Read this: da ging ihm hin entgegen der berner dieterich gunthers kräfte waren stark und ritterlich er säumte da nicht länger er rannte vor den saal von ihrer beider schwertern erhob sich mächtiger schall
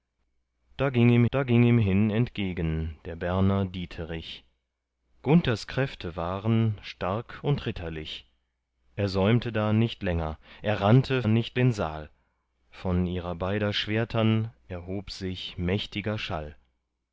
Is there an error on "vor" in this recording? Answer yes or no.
yes